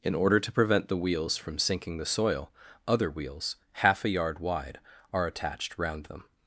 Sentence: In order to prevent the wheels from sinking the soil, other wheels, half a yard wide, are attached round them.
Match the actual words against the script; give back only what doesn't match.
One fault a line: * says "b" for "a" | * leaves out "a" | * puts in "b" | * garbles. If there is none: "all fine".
all fine